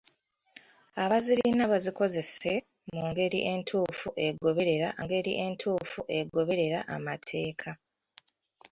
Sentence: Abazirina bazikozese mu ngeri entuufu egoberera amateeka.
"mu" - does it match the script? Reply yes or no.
yes